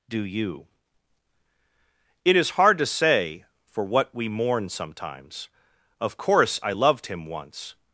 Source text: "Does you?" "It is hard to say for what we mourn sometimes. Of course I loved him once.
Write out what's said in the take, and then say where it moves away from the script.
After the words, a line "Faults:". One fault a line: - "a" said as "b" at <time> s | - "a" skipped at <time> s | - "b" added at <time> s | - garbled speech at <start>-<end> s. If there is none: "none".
"Do you?" "It is hard to say for what we mourn sometimes. Of course I loved him once.
Faults:
- "Does" said as "Do" at 0.1 s